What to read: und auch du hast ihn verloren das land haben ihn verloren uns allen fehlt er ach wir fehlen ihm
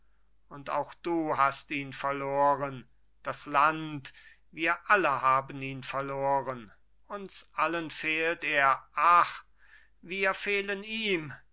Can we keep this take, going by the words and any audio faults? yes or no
no